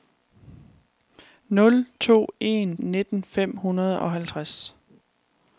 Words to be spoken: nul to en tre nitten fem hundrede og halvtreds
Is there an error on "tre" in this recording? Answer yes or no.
yes